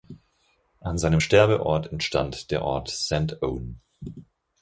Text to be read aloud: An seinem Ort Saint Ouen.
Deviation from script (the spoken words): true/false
true